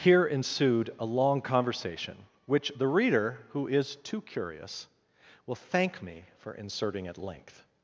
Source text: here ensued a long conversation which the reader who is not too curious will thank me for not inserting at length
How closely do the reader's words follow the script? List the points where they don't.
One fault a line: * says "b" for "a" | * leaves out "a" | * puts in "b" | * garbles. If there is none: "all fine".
* leaves out "not"
* leaves out "not"